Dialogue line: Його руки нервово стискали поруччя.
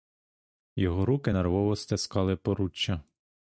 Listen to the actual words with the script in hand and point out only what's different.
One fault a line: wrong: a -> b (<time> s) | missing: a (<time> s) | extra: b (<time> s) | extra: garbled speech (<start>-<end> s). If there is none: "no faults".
no faults